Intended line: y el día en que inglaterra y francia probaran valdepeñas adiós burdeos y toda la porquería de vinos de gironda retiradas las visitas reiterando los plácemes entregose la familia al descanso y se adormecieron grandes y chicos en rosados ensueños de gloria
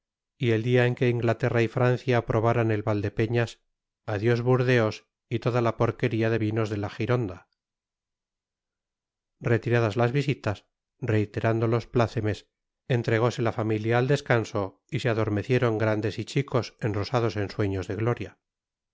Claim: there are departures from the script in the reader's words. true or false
true